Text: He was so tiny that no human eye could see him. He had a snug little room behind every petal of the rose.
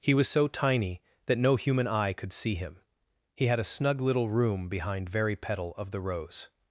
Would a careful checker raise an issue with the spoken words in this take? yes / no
yes